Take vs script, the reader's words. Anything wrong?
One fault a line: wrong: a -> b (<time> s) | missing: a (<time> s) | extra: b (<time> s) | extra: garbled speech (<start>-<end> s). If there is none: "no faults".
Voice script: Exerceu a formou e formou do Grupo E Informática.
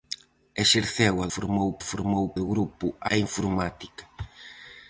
no faults